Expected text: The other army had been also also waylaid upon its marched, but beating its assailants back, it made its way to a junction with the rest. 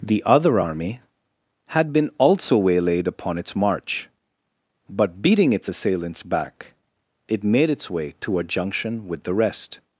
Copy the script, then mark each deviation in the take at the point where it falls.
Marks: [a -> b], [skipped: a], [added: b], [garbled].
The other army had been also [skipped: also] waylaid upon its [marched, -> march] but beating its assailants back, it made its way to a junction with the rest.